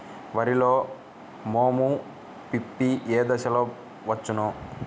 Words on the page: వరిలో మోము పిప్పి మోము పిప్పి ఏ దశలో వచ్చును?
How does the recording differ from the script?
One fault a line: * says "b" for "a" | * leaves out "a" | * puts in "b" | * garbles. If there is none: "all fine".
* leaves out "మోము పిప్పి"